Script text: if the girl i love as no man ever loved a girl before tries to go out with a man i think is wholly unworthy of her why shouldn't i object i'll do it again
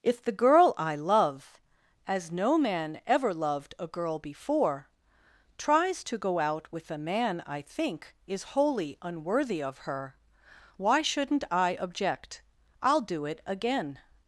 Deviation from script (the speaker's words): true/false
false